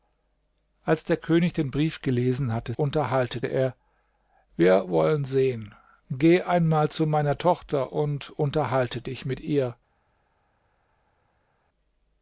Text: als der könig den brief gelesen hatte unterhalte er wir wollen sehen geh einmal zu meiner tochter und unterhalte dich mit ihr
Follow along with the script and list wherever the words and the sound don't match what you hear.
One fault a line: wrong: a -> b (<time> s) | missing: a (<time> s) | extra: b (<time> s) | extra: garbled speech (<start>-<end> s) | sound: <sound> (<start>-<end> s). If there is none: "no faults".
no faults